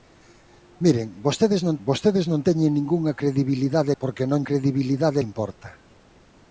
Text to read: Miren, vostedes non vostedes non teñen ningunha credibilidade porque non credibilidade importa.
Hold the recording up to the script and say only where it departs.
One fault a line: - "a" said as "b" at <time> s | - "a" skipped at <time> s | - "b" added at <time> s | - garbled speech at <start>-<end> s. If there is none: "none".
none